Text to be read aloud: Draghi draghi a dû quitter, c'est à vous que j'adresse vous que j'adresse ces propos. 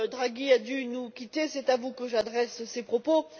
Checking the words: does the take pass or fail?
fail